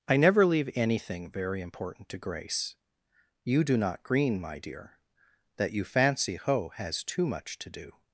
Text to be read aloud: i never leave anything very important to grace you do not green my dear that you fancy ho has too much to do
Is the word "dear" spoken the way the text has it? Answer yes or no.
yes